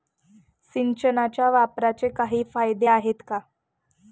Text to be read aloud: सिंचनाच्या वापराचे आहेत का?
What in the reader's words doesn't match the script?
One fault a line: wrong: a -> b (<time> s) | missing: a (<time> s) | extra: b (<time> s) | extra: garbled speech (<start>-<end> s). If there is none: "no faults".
extra: काही फायदे (2.1 s)